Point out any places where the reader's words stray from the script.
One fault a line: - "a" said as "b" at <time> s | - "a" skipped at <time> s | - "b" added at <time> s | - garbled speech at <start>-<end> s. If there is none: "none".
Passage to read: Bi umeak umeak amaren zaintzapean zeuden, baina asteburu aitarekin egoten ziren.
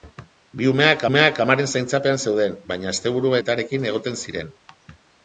none